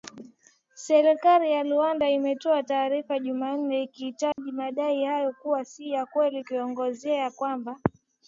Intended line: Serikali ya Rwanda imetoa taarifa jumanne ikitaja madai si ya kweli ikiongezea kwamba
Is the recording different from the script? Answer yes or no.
yes